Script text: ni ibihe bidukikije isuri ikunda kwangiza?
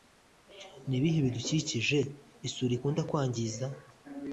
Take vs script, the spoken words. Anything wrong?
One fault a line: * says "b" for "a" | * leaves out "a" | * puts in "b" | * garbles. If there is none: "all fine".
all fine